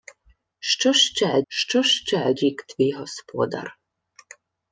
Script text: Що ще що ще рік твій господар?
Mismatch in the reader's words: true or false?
false